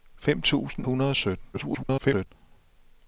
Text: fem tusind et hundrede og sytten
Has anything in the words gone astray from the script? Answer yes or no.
yes